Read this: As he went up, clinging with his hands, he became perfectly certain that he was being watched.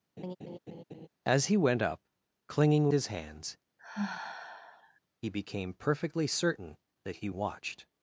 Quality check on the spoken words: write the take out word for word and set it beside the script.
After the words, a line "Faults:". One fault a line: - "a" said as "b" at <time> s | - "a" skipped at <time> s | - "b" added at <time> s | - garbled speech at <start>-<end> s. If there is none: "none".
As he went up, clinging his hands, he became perfectly certain that he watched.
Faults:
- "with" skipped at 2.9 s
- "was being" skipped at 7.3 s